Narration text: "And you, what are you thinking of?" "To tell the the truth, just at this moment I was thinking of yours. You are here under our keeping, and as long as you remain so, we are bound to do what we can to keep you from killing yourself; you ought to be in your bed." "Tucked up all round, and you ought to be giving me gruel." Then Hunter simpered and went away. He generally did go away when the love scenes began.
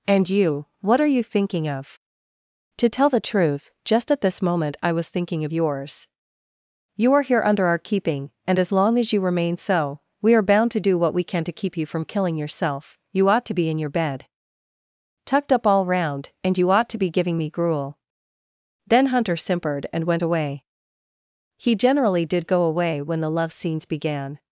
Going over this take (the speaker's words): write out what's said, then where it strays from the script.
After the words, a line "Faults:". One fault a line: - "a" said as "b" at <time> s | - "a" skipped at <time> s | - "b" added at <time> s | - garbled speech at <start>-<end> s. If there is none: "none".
"And you, what are you thinking of?" "To tell the truth, just at this moment I was thinking of yours. You are here under our keeping, and as long as you remain so, we are bound to do what we can to keep you from killing yourself; you ought to be in your bed." "Tucked up all round, and you ought to be giving me gruel." Then Hunter simpered and went away. He generally did go away when the love scenes began.
Faults:
- "the" skipped at 3.2 s